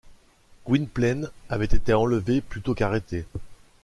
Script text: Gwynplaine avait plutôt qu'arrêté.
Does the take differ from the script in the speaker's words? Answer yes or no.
yes